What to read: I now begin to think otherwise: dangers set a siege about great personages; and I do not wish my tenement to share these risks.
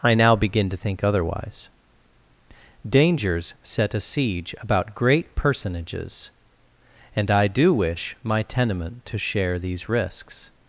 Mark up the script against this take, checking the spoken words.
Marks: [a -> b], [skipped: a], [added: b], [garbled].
I now begin to think otherwise: dangers set a siege about great personages; and I do [skipped: not] wish my tenement to share these risks.